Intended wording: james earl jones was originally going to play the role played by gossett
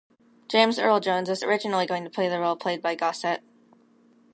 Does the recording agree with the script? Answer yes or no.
yes